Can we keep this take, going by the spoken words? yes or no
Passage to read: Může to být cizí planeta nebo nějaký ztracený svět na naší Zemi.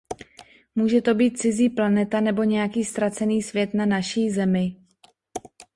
yes